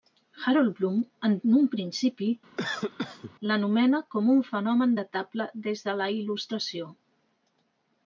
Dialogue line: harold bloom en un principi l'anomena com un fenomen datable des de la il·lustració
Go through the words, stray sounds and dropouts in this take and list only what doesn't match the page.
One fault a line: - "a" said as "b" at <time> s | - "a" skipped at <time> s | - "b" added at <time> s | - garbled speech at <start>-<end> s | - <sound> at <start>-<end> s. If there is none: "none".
- cough at 2.6-3.3 s